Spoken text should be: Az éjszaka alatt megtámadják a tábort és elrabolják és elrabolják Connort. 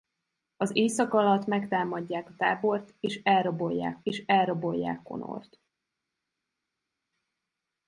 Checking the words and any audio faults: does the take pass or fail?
pass